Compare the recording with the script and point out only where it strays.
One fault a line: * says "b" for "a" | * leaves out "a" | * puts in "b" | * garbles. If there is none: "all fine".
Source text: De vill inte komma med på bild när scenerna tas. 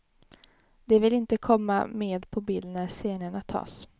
all fine